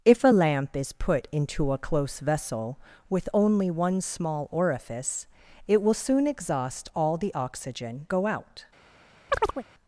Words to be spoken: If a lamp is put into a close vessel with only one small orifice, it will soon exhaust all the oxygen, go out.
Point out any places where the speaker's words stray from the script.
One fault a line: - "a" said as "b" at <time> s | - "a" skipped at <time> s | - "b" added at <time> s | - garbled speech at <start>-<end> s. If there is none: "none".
none